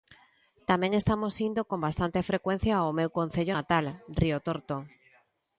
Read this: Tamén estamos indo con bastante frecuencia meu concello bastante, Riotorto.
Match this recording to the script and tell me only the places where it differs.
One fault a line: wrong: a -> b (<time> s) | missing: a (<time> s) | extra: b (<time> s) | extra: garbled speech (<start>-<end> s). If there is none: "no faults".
extra: ao (2.8 s)
wrong: bastante -> natal (3.6 s)